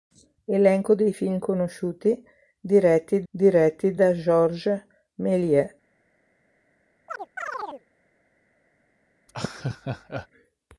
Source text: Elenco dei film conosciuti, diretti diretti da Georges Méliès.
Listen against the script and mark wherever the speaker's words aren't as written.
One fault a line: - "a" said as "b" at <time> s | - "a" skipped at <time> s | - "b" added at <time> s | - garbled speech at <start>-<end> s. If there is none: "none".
none